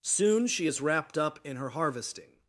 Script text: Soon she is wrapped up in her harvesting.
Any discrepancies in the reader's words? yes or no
no